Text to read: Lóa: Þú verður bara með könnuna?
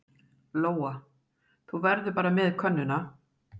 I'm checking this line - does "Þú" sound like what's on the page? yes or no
yes